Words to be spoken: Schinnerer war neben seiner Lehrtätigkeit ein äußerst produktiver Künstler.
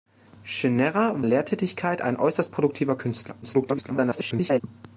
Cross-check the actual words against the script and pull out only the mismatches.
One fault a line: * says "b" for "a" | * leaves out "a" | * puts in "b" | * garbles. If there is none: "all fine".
* leaves out "war neben seiner"
* garbles